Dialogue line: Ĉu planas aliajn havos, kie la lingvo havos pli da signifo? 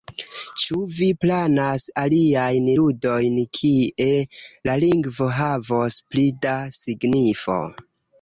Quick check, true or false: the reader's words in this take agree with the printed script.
false